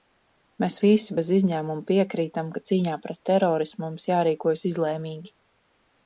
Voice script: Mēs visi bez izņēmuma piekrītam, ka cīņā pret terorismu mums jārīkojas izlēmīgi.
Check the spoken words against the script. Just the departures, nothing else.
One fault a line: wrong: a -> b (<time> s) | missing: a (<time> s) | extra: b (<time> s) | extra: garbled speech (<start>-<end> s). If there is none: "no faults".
no faults